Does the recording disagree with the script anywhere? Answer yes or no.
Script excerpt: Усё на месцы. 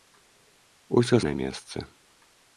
no